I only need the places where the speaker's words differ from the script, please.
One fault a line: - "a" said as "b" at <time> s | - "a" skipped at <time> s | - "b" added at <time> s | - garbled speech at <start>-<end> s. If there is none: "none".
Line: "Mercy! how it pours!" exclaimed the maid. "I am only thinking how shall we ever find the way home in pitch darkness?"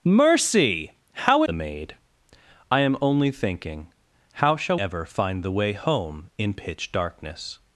- "it pours exclaimed" skipped at 1.4 s
- "we" skipped at 4.8 s